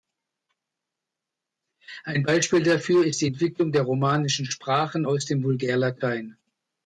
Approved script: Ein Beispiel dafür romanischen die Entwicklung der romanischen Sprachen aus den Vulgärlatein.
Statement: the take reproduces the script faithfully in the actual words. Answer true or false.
false